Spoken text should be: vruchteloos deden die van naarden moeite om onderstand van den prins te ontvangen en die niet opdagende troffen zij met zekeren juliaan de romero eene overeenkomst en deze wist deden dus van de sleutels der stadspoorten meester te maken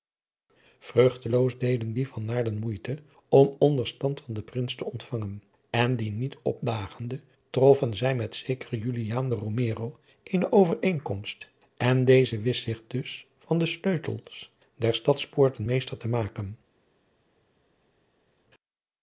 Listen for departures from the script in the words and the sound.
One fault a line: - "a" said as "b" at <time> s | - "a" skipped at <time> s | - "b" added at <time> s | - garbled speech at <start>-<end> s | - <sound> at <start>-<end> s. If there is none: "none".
- "deden" said as "zich" at 12.6 s